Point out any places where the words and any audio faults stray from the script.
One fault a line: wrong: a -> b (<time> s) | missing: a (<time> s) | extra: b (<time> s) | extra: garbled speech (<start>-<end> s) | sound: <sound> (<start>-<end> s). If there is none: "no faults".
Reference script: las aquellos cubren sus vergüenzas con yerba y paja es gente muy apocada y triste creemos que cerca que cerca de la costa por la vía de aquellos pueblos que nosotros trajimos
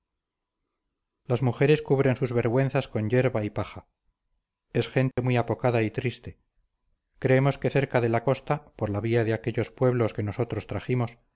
wrong: aquellos -> mujeres (1.4 s)
sound: dropout (5.1-5.2 s)
missing: que cerca (8.0 s)